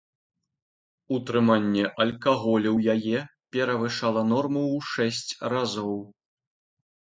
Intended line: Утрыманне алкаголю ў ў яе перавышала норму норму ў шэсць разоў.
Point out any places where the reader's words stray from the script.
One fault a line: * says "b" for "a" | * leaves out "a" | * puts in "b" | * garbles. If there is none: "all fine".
* leaves out "ў"
* leaves out "норму"